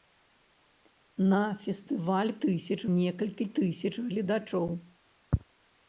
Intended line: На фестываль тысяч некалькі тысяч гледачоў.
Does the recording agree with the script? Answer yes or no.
yes